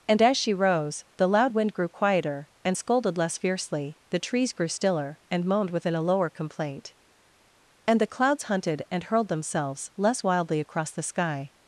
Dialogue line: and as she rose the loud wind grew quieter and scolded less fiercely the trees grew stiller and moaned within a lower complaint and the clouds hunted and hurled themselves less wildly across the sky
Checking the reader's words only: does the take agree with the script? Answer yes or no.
yes